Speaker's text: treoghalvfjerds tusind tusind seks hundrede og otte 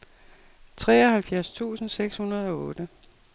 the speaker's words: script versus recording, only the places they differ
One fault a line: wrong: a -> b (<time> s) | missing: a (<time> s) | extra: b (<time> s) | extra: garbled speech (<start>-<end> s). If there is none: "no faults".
missing: tusind (1.9 s)